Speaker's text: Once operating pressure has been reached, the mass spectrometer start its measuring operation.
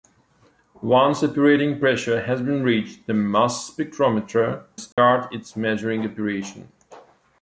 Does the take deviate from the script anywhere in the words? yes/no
no